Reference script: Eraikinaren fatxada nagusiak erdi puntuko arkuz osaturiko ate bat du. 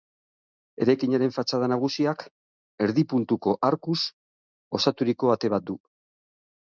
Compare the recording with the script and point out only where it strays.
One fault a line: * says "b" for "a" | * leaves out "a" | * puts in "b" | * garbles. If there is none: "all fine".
all fine